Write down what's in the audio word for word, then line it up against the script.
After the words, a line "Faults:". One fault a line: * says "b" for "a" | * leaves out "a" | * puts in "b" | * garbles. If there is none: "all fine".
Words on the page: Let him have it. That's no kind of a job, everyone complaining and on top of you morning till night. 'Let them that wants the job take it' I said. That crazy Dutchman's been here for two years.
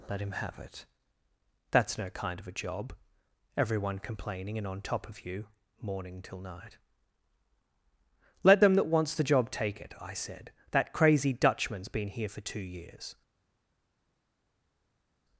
Let him have it. That's no kind of a job, everyone complaining and on top of you morning till night. 'Let them that wants the job take it' I said. That crazy Dutchman's been here for two years.
Faults:
all fine